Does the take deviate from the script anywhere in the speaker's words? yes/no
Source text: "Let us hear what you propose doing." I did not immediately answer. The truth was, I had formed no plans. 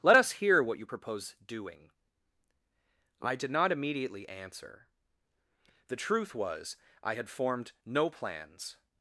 no